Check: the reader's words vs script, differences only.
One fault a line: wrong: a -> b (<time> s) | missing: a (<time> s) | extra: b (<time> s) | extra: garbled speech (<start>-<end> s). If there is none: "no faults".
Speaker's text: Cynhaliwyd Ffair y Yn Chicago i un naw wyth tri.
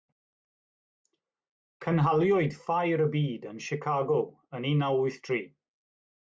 extra: Byd (3.2 s)
wrong: i -> yn (4.6 s)